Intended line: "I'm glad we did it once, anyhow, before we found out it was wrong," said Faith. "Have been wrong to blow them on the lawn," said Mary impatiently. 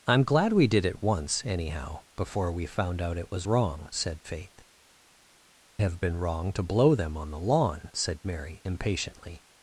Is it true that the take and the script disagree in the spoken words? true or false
false